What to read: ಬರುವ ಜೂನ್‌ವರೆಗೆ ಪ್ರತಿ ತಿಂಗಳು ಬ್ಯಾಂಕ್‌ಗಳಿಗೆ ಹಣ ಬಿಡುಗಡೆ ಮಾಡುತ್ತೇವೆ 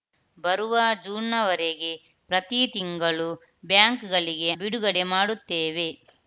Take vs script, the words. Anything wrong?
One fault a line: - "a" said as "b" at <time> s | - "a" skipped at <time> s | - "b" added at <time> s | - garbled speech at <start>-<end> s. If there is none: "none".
- "ಹಣ" skipped at 4.5 s